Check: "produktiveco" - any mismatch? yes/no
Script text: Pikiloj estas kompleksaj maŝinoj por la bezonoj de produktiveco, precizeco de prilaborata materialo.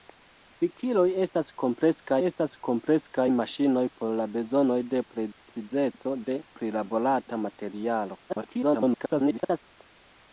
yes